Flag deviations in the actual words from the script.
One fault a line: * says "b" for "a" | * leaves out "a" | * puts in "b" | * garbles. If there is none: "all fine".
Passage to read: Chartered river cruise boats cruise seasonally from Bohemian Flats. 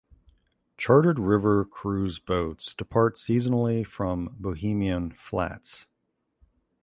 * says "depart" for "cruise"